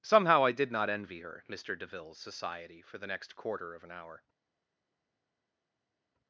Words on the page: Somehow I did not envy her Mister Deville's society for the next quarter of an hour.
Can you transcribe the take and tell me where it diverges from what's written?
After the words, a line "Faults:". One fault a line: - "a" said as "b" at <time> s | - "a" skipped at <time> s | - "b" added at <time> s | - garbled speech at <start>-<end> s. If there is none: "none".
Somehow I did not envy her Mister Deville's society for the next quarter of an hour.
Faults:
none